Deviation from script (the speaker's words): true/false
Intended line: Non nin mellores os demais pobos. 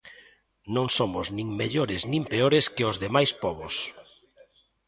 true